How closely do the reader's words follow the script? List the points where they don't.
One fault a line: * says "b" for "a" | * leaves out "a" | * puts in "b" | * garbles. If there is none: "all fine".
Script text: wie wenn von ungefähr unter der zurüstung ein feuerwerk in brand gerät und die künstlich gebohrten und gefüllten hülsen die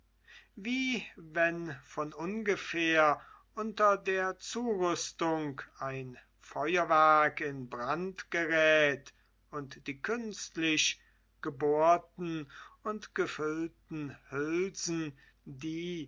all fine